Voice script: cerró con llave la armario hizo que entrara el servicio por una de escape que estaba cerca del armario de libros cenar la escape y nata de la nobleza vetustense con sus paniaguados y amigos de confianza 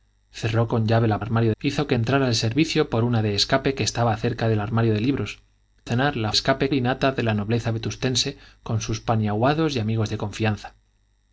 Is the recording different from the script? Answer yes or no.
no